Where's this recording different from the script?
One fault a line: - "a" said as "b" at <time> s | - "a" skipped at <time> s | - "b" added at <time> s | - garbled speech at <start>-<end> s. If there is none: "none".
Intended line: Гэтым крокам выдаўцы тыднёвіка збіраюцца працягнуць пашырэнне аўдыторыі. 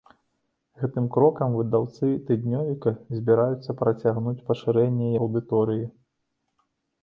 none